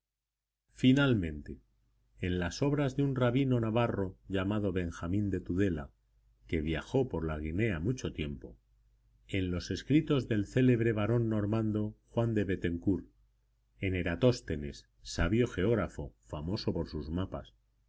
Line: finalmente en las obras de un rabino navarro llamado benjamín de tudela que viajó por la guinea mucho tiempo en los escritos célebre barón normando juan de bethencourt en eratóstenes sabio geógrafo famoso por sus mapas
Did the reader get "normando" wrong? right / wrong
right